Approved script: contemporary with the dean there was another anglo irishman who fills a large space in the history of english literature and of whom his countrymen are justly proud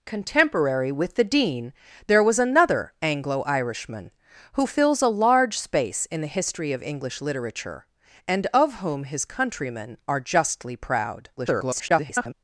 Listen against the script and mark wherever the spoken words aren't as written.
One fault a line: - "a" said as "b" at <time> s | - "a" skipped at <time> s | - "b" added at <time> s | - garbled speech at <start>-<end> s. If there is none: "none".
- garbled speech at 11.4-12.3 s